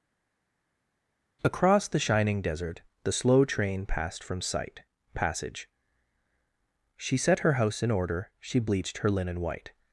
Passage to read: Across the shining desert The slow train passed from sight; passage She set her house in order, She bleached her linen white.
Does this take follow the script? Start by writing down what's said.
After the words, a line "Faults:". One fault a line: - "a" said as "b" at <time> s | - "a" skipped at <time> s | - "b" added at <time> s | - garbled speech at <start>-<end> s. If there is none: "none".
Across the shining desert The slow train passed from sight; passage She set her house in order, She bleached her linen white.
Faults:
none